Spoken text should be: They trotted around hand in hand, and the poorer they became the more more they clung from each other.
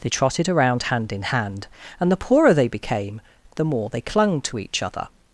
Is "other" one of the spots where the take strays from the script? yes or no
no